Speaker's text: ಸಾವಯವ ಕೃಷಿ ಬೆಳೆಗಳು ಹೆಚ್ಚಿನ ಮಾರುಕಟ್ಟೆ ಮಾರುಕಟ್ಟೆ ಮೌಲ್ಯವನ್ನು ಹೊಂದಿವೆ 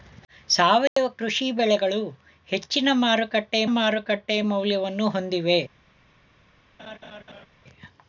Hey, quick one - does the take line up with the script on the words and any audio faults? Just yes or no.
no